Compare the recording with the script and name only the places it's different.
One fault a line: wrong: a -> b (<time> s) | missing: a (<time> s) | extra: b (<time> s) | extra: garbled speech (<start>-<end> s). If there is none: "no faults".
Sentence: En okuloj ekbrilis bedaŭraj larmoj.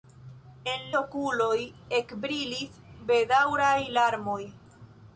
no faults